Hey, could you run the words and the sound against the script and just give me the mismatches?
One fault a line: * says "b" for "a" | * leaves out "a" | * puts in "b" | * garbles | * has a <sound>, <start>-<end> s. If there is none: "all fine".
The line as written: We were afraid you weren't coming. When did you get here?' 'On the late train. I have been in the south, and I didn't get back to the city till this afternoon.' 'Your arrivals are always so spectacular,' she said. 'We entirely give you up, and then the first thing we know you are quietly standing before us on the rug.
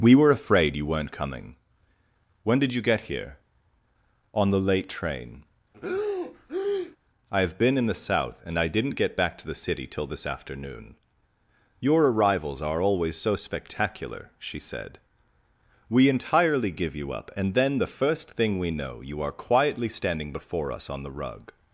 * has a breath, 5.7-7.0 s